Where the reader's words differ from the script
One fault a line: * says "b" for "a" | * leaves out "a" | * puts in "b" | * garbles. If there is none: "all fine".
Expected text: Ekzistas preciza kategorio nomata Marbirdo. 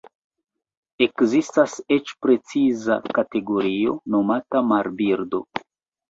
* puts in "eĉ"